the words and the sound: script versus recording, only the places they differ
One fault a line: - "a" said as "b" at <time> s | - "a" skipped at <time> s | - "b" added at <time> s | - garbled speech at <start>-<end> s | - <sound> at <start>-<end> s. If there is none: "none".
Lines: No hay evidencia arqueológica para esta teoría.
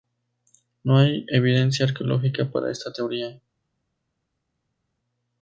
none